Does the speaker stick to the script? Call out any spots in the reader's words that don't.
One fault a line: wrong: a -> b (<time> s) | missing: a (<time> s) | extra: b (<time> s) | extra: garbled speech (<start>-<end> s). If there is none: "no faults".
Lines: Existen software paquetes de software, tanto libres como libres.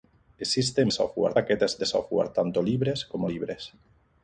no faults